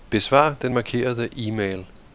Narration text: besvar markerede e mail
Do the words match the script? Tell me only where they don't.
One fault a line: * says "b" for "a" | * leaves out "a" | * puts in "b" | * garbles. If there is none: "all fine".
* puts in "den"